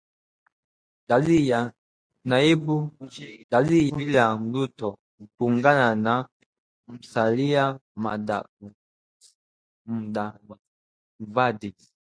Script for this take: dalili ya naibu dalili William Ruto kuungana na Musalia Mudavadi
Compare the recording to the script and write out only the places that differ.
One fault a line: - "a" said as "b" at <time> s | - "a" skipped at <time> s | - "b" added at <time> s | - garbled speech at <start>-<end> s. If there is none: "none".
none